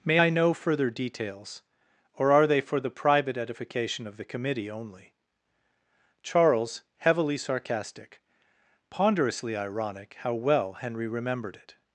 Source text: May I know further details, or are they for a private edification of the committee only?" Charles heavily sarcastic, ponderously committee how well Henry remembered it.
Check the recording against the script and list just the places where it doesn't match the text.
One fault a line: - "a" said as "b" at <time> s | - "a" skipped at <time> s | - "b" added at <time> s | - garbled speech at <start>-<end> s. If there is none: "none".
- "a" said as "the" at 2.8 s
- "committee" said as "ironic" at 9.6 s